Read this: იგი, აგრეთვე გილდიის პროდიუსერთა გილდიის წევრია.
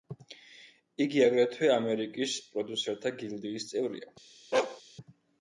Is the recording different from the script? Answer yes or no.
yes